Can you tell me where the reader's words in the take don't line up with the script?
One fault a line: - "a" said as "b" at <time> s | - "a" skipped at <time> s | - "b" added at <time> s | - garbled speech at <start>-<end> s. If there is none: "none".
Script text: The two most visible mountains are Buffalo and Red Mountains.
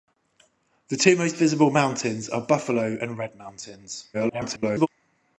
- garbled speech at 4.1-4.9 s